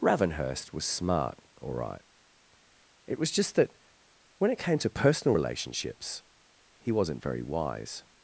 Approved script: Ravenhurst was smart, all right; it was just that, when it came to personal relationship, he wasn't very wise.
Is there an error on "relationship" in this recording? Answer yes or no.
yes